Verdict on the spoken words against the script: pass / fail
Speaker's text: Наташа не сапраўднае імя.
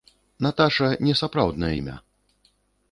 pass